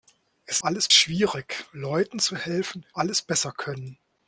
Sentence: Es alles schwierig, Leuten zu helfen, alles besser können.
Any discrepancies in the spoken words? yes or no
no